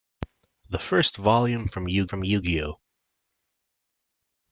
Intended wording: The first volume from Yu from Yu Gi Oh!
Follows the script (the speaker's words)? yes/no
yes